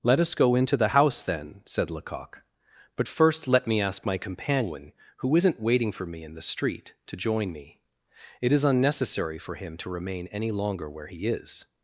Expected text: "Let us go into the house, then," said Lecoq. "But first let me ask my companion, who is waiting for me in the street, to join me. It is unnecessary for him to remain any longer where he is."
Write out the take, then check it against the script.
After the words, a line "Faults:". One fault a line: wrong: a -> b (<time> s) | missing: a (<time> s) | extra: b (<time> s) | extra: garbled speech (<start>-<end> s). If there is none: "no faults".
"Let us go into the house, then," said Lecoq. "But first let me ask my companion, who isn't waiting for me in the street, to join me. It is unnecessary for him to remain any longer where he is."
Faults:
wrong: is -> isn't (5.4 s)